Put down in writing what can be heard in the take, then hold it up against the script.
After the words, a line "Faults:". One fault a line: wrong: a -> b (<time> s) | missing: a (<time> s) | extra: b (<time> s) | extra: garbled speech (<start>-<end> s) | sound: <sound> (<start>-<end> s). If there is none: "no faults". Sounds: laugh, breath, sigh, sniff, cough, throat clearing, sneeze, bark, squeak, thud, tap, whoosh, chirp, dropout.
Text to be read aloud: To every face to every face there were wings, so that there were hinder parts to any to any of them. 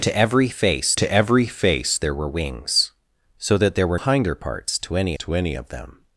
To every face to every face there were wings, so that there were hinder parts to any to any of them.
Faults:
no faults